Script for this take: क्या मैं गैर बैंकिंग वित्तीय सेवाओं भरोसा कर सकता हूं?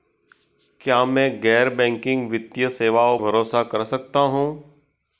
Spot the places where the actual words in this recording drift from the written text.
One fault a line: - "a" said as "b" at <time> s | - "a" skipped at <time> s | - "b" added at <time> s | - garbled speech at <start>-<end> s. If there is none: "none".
none